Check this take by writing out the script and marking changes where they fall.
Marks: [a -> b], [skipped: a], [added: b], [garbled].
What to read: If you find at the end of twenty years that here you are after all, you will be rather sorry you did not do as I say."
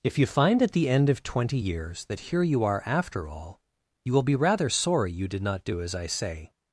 If you find at the end of twenty years that here you are after all, you will be rather sorry you did not do as I say."